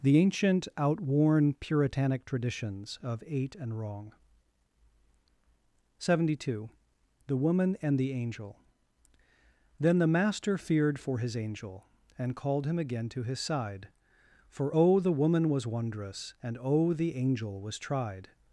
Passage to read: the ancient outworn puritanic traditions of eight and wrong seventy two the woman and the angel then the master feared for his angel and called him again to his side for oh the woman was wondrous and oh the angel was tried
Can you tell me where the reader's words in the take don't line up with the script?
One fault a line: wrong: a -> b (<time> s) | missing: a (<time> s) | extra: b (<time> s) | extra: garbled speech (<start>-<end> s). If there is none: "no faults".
no faults